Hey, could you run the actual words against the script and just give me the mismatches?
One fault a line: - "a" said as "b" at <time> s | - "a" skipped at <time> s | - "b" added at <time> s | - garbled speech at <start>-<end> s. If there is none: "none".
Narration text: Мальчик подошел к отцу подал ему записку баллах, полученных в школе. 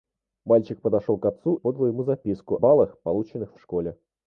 none